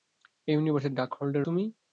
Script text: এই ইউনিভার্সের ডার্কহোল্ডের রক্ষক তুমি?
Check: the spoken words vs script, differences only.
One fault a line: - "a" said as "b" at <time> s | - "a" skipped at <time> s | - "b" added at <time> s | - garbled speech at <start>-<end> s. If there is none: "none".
- "রক্ষক" skipped at 1.5 s